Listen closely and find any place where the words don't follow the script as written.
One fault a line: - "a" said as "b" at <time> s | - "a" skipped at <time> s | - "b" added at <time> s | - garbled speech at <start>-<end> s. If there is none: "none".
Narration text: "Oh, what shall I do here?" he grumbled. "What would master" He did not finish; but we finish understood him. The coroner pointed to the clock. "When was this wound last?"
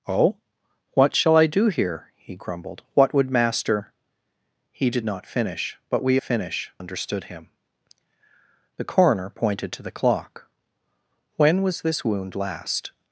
none